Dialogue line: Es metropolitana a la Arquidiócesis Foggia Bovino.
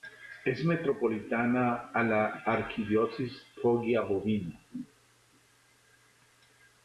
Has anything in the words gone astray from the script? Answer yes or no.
no